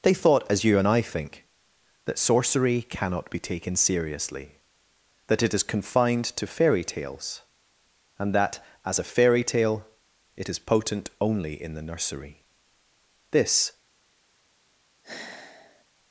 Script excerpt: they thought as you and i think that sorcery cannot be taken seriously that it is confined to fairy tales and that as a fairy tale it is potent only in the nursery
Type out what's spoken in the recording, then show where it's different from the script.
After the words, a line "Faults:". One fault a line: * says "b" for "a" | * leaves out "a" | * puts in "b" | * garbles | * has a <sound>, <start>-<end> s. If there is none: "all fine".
they thought as you and i think that sorcery cannot be taken seriously that it is confined to fairy tales and that as a fairy tale it is potent only in the nursery this
Faults:
* puts in "this"
* has a sigh, 15.0-15.8 s